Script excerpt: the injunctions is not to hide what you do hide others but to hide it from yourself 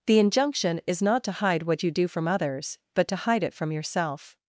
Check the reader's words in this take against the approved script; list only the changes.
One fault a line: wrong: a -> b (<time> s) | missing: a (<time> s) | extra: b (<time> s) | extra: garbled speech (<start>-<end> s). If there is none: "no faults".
wrong: injunctions -> injunction (0.2 s)
wrong: hide -> from (2.1 s)